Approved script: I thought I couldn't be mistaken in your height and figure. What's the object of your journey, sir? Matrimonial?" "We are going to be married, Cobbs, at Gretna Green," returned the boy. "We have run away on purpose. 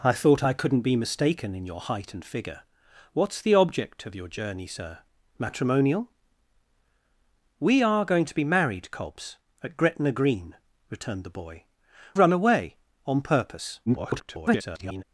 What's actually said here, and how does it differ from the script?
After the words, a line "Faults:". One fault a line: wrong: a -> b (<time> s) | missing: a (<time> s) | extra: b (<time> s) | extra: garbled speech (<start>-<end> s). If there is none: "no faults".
I thought I couldn't be mistaken in your height and figure. What's the object of your journey, sir? Matrimonial?" "We are going to be married, Cobbs, at Gretna Green," returned the boy. "Run away on purpose. [garbled]
Faults:
missing: We have (11.7 s)
extra: garbled speech (13.9-15.0 s)